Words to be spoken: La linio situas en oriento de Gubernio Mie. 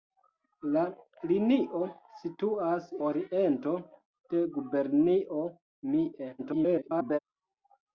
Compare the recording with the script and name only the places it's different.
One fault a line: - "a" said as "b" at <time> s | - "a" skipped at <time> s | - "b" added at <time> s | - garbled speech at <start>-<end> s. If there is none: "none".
- "en" skipped at 2.9 s
- garbled speech at 6.4-7.2 s